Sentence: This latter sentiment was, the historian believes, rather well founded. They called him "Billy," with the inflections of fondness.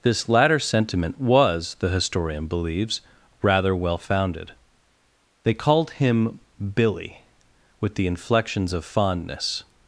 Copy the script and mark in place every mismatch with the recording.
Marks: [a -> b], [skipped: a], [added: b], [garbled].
This latter sentiment was, the historian believes, rather well founded. They called him "Billy," with the inflections of fondness.